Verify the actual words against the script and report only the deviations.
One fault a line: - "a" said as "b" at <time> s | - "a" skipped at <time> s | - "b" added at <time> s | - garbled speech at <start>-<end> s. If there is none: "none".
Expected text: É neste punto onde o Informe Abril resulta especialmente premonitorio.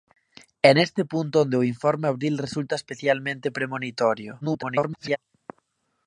- garbled speech at 4.4-5.2 s